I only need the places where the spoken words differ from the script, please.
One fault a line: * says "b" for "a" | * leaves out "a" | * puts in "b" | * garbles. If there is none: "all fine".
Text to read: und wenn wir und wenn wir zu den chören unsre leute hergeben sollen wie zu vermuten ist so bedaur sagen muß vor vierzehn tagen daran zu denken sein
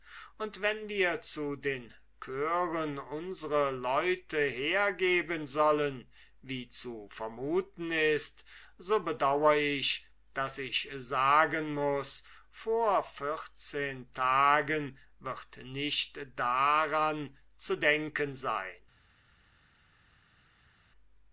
* leaves out "und wenn wir"
* puts in "ich daß ich"
* puts in "wird nicht"